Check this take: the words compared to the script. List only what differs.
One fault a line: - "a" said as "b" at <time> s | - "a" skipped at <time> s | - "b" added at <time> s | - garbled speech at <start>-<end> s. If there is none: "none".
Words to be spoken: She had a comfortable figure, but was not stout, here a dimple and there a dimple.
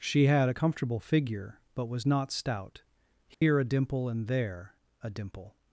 none